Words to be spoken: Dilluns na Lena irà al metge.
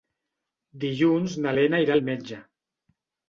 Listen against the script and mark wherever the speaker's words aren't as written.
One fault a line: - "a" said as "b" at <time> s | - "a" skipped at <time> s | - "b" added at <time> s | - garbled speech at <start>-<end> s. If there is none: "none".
none